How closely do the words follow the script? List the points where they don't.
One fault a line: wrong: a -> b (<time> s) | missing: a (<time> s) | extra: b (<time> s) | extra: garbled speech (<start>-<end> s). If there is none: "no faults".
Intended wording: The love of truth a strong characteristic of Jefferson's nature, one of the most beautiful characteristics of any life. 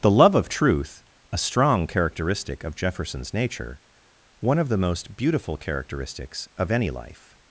no faults